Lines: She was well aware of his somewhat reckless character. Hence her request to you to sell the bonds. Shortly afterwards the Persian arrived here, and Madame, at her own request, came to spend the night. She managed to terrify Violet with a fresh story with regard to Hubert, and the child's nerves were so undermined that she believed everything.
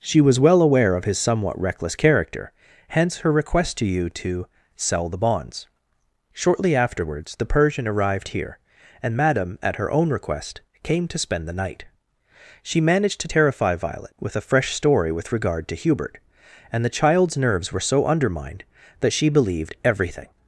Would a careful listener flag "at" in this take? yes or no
no